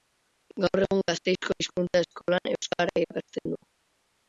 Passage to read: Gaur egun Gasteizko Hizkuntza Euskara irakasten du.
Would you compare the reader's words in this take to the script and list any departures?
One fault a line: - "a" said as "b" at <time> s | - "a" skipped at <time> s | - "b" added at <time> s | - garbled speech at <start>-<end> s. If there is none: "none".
- "Eskolan" added at 2.1 s